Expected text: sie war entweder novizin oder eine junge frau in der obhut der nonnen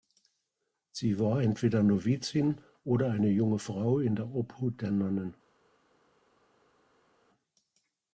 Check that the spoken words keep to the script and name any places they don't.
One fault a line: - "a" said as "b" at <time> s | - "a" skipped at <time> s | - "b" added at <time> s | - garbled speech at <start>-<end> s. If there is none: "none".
none